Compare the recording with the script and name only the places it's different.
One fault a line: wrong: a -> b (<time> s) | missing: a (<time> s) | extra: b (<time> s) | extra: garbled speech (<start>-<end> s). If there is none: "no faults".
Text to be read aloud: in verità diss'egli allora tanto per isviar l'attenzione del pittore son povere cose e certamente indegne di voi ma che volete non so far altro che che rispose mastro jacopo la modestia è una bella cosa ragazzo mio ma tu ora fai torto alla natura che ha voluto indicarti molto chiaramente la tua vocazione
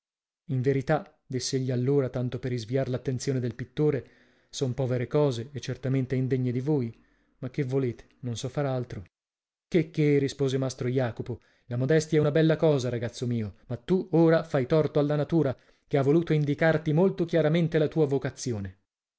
no faults